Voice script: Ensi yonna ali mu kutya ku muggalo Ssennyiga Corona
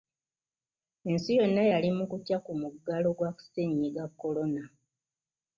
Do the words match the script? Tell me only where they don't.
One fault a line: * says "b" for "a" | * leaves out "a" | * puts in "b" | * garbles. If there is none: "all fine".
* says "yali" for "ali"
* puts in "gwa"